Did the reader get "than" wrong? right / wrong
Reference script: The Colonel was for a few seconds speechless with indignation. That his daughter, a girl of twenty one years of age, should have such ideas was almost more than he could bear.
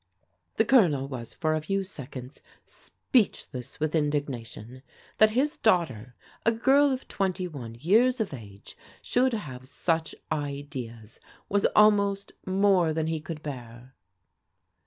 right